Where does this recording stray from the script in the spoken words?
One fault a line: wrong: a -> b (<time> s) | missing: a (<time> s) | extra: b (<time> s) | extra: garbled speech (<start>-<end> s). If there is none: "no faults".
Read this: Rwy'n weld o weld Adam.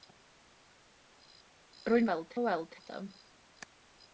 no faults